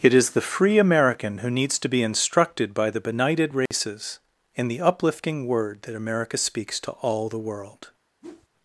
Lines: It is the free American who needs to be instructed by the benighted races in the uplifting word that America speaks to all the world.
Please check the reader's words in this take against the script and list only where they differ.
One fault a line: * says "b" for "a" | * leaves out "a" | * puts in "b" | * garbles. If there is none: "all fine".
all fine